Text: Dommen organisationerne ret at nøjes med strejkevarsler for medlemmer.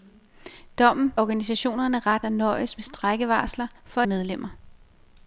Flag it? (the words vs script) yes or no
no